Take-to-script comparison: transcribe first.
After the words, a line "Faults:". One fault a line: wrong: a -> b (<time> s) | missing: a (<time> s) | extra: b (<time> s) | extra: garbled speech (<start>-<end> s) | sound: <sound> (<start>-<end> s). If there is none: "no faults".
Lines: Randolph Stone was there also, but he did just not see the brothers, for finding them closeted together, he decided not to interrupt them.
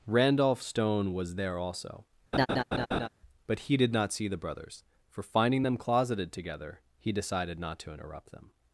Randolph Stone was there also, but he did not see the brothers, for finding them closeted together, he decided not to interrupt them.
Faults:
sound: laugh (2.3-3.1 s)
missing: just (3.9 s)